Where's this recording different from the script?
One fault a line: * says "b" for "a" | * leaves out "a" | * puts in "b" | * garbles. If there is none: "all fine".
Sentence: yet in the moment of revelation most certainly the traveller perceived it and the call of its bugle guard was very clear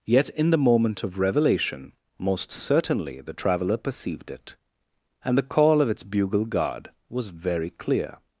all fine